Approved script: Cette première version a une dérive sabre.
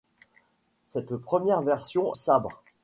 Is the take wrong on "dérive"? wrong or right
wrong